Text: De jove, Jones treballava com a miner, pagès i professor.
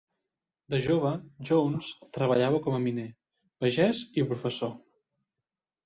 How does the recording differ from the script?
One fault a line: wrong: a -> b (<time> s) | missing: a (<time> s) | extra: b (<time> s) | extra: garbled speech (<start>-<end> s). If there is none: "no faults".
no faults